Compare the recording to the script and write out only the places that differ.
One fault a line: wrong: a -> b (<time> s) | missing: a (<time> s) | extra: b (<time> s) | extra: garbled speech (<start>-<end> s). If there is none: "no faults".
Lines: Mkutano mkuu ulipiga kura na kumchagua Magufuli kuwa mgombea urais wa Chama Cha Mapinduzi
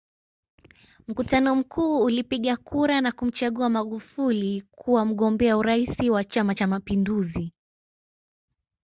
no faults